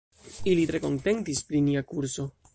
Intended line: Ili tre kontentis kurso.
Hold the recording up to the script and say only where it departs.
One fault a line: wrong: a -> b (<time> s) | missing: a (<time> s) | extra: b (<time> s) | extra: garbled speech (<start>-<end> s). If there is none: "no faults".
extra: pri nia (1.5 s)